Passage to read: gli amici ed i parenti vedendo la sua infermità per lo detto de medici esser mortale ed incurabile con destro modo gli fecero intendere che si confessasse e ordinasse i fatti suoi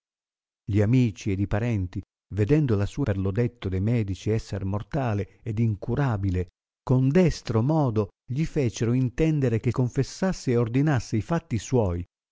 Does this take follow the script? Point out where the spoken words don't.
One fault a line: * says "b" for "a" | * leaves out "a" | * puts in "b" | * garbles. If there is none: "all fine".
* leaves out "infermità"
* leaves out "si"